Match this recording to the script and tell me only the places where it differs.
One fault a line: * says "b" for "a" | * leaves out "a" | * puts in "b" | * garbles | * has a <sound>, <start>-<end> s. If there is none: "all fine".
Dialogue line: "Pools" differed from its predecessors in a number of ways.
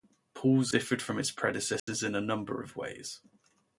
* has a dropout, 1.8-1.9 s